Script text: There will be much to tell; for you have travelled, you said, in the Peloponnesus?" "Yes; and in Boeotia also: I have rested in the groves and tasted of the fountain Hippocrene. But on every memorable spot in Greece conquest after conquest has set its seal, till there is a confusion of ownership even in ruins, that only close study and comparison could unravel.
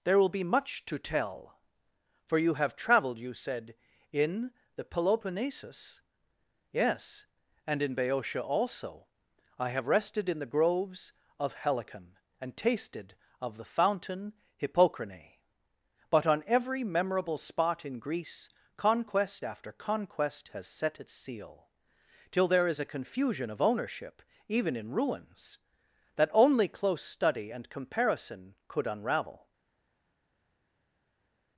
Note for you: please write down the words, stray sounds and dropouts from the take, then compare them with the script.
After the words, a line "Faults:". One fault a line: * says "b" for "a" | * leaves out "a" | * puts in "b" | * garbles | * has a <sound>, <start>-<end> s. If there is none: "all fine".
There will be much to tell; for you have travelled, you said, in the Peloponnesus?" "Yes; and in Boeotia also: I have rested in the groves of Helicon, and tasted of the fountain Hippocrene. But on every memorable spot in Greece conquest after conquest has set its seal, till there is a confusion of ownership even in ruins, that only close study and comparison could unravel.
Faults:
* puts in "of Helicon"